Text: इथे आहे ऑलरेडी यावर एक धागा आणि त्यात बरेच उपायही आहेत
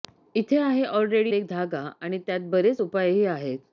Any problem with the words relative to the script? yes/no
yes